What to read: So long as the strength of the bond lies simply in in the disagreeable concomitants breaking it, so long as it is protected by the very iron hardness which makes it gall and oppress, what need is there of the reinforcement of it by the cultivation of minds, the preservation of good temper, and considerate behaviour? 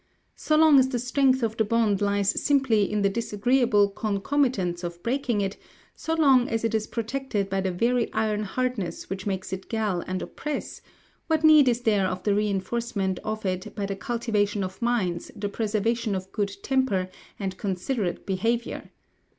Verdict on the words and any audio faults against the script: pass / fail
fail